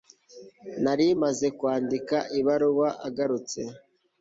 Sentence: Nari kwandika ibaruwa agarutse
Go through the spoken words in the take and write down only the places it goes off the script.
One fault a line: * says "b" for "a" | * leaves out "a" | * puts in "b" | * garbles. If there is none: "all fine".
* puts in "maze"